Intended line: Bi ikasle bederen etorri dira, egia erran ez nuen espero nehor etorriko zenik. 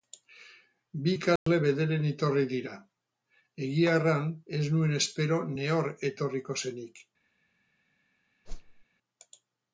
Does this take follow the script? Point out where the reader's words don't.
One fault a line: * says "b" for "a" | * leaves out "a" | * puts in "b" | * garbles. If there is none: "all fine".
all fine